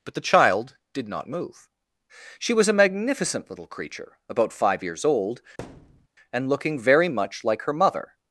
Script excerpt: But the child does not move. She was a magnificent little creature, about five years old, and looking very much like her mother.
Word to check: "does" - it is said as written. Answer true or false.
false